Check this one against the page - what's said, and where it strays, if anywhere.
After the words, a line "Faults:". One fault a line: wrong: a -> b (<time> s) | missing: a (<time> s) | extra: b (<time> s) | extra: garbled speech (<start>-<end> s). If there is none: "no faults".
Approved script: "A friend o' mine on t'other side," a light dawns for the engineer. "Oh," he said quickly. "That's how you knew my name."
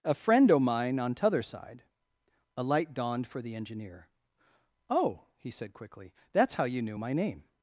"A friend o' mine on t'other side," a light dawned for the engineer. "Oh," he said quickly. "That's how you knew my name."
Faults:
wrong: dawns -> dawned (3.0 s)